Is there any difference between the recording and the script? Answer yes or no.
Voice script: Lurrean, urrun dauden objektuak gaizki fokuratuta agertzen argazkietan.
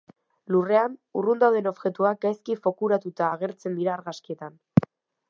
yes